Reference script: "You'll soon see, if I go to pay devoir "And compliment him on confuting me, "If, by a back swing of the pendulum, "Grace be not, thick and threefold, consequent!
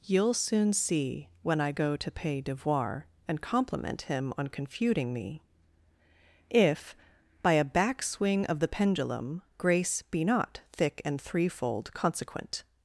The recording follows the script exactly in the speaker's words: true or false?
false